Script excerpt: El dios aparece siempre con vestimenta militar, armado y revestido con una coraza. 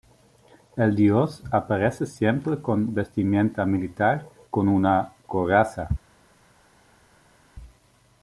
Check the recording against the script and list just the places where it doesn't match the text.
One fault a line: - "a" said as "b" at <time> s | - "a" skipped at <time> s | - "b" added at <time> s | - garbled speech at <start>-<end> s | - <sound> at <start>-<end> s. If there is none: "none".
- "armado y revestido" skipped at 4.3 s